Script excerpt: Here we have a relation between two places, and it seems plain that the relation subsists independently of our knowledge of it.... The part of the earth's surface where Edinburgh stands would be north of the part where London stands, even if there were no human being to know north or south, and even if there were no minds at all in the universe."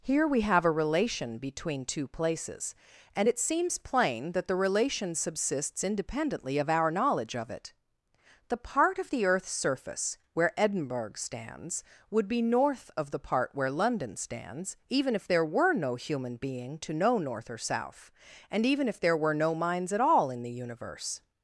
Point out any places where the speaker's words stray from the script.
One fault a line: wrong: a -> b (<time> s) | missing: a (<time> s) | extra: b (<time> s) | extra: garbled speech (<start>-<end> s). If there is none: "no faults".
no faults